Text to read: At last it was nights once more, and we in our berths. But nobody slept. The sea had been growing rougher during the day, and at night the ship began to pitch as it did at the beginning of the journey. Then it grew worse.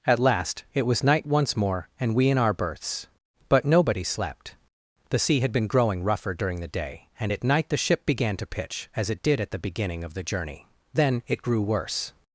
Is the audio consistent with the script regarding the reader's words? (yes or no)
no